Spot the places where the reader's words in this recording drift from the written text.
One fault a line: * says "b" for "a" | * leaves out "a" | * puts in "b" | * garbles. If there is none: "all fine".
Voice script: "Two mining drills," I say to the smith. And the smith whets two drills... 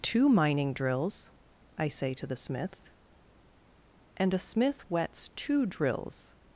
* says "a" for "the"